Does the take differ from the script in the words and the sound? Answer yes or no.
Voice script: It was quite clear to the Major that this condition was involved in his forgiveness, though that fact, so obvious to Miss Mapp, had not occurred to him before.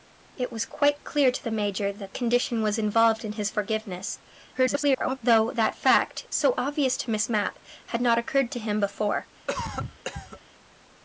yes